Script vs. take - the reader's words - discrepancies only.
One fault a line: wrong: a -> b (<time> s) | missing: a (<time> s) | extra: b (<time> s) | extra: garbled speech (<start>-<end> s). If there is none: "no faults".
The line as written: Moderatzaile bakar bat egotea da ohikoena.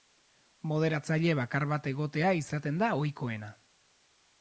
extra: izaten (2.4 s)